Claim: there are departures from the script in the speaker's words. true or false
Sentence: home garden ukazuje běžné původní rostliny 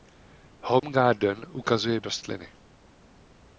true